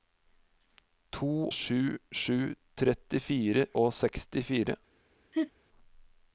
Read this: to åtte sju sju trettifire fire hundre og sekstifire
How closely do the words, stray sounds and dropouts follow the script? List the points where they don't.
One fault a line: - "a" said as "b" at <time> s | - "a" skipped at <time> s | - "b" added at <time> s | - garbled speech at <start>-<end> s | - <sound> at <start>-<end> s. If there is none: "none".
- "åtte" skipped at 1.5 s
- "fire hundre" skipped at 3.7 s
- laugh at 5.3-5.5 s